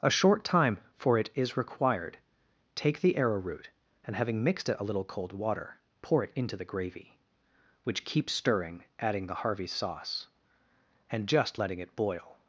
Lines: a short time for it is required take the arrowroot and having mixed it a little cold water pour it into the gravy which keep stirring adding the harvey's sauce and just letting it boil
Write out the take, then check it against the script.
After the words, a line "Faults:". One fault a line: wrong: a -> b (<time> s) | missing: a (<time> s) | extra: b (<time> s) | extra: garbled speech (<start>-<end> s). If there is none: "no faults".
a short time for it is required take the arrowroot and having mixed it a little cold water pour it into the gravy which keep stirring adding the harvey's sauce and just letting it boil
Faults:
no faults